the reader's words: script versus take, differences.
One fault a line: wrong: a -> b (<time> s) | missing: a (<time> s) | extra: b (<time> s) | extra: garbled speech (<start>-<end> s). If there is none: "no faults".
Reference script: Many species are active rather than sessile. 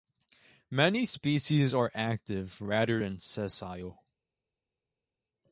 no faults